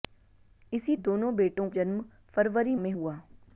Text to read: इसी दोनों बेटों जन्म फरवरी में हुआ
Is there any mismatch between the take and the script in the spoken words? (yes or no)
no